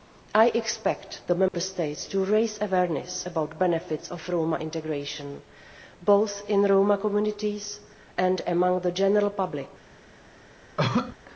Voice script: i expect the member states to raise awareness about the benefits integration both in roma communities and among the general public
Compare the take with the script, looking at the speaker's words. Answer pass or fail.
fail